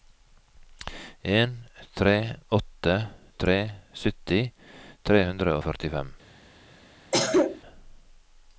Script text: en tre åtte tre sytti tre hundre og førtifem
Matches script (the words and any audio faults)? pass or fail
fail